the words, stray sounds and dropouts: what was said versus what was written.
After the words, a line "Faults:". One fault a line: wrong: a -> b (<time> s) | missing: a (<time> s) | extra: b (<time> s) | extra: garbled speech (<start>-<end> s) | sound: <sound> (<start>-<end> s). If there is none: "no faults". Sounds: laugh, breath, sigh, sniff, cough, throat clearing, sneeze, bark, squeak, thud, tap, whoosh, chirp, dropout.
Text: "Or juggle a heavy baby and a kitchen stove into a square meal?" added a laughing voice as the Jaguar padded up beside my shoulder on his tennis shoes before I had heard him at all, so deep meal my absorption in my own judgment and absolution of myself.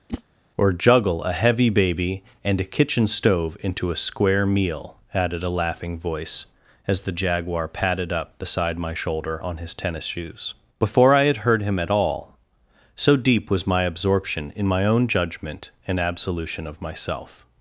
"Or juggle a heavy baby and a kitchen stove into a square meal?" added a laughing voice as the Jaguar padded up beside my shoulder on his tennis shoes before I had heard him at all, so deep was my absorption in my own judgment and absolution of myself.
Faults:
sound: whoosh (0.1-0.2 s)
wrong: meal -> was (13.5 s)